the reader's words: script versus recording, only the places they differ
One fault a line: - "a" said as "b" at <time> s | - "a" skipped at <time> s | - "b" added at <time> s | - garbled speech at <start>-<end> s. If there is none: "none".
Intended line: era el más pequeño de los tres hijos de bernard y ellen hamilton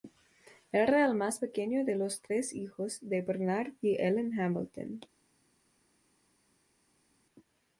none